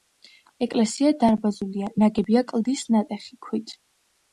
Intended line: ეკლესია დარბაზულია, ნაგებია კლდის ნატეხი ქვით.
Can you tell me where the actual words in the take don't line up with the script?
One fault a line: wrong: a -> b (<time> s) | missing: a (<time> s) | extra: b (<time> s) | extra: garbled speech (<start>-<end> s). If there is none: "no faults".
no faults